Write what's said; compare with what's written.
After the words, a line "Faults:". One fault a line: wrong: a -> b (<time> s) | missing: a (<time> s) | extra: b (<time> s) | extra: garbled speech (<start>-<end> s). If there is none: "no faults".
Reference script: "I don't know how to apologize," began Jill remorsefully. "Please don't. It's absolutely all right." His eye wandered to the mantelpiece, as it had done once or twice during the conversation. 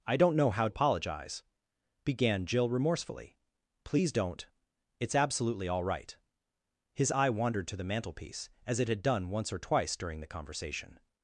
"I don't know how apologize," began Jill remorsefully. "Please don't. It's absolutely all right." His eye wandered to the mantelpiece, as it had done once or twice during the conversation.
Faults:
missing: to (0.7 s)